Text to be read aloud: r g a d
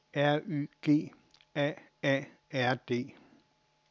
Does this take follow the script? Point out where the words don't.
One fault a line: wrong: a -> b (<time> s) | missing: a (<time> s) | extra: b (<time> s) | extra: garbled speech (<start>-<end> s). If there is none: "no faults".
extra: y (0.5 s)
extra: a r (2.0 s)